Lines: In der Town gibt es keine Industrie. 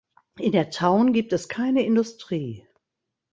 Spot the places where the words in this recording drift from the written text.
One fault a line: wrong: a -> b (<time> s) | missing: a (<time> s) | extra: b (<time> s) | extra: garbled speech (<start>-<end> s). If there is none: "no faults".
no faults